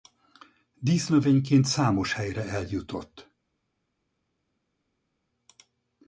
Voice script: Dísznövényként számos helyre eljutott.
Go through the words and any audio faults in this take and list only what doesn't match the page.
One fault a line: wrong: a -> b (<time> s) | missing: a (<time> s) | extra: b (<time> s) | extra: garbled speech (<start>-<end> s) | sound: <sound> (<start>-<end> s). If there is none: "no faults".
no faults